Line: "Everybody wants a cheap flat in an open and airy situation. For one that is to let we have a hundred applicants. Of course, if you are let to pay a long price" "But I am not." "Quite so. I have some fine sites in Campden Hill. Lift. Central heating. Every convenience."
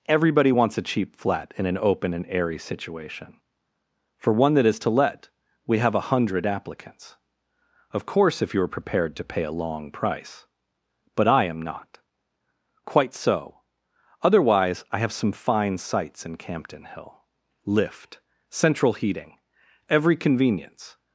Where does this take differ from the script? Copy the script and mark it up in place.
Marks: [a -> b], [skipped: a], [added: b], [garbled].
"Everybody wants a cheap flat in an open and airy situation. For one that is to let we have a hundred applicants. Of course, if you are [let -> prepared] to pay a long price" "But I am not." "Quite so. [added: Otherwise] I have some fine sites in Campden Hill. Lift. Central heating. Every convenience."